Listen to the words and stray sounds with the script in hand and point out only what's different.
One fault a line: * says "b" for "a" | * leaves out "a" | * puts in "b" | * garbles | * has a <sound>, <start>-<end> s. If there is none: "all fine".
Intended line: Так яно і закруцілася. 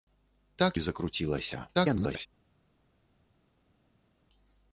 * leaves out "яно"
* garbles